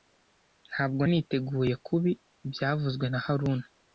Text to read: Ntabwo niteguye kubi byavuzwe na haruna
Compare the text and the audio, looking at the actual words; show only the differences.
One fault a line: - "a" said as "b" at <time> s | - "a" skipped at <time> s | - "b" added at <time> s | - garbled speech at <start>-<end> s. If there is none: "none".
none